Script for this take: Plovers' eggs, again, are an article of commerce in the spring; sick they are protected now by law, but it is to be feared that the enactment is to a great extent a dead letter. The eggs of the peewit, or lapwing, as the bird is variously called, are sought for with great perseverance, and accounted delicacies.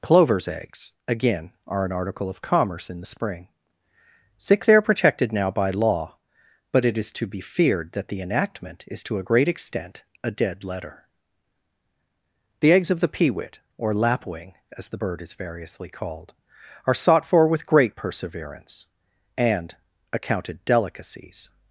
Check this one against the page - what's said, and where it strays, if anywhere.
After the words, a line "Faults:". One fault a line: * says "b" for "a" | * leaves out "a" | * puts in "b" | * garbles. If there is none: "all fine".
Plovers' eggs, again, are an article of commerce in the spring; sick they are protected now by law, but it is to be feared that the enactment is to a great extent a dead letter. The eggs of the peewit, or lapwing, as the bird is variously called, are sought for with great perseverance, and accounted delicacies.
Faults:
all fine